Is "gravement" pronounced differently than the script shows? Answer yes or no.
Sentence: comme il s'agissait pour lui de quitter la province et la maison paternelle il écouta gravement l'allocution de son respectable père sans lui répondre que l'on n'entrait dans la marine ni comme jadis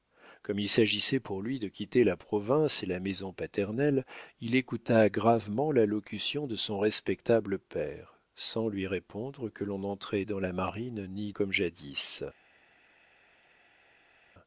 no